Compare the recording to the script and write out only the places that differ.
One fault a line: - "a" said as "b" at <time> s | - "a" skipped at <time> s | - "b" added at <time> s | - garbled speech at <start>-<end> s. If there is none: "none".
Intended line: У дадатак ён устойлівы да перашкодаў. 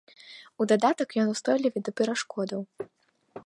none